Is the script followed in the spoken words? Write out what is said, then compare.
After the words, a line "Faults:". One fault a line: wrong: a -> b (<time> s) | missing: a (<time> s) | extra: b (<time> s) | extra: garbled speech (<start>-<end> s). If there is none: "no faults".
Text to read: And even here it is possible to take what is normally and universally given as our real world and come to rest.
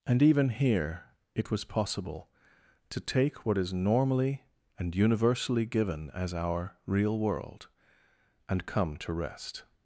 And even here it was possible to take what is normally and universally given as our real world and come to rest.
Faults:
wrong: is -> was (1.5 s)